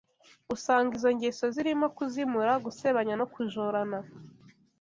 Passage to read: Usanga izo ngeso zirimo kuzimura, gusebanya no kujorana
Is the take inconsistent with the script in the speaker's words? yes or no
no